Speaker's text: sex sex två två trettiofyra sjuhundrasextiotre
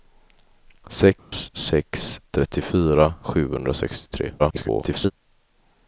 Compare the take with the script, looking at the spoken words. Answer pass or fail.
fail